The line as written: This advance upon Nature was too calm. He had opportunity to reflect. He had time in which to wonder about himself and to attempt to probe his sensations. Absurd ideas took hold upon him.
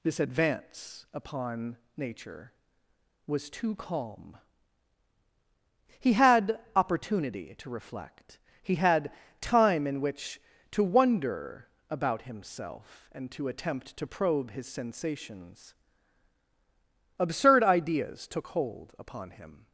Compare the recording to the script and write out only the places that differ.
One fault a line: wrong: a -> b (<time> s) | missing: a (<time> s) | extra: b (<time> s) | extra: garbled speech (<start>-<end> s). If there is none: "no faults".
no faults